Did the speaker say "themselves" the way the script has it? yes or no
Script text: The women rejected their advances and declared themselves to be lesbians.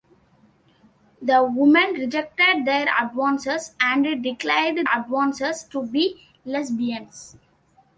no